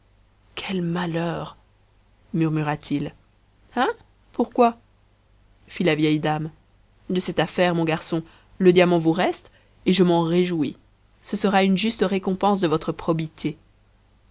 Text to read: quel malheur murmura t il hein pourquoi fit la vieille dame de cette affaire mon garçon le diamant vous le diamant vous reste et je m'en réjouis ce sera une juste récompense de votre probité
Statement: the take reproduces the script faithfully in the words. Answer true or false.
false